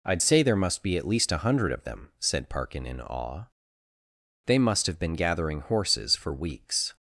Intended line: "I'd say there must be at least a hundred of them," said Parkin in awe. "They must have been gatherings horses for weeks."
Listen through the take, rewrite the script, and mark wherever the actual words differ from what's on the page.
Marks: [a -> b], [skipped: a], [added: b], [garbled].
"I'd say there must be at least a hundred of them," said Parkin in awe. "They must have been [gatherings -> gathering] horses for weeks."